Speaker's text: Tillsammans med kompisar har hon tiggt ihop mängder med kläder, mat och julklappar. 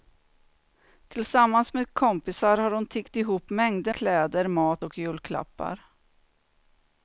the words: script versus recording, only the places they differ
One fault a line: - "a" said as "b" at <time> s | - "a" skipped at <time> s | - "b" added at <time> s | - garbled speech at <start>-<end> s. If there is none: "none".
- "med" skipped at 3.9 s